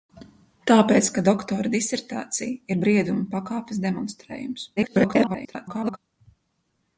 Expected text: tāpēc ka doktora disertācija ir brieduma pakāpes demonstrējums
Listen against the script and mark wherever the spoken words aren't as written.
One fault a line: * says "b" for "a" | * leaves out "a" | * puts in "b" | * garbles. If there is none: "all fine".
* garbles